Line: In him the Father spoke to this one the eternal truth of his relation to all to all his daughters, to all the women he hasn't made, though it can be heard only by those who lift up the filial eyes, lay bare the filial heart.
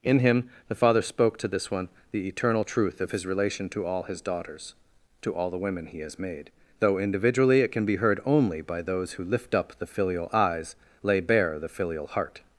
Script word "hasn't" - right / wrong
wrong